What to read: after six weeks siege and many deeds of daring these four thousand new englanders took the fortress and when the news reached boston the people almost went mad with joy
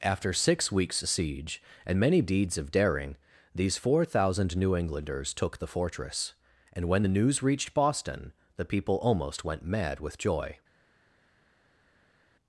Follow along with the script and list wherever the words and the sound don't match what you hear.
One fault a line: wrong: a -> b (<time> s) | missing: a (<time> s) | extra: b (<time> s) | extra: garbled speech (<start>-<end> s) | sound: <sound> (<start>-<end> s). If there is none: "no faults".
no faults